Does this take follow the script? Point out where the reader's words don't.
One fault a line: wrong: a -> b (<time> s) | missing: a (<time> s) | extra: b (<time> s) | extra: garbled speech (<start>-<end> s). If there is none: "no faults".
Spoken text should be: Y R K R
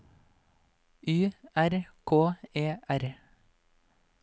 extra: E (2.5 s)